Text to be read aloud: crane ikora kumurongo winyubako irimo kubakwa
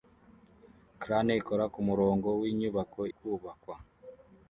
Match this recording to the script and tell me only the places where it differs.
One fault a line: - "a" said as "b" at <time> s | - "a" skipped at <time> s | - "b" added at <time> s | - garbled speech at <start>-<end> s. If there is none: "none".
- "irimo" skipped at 3.0 s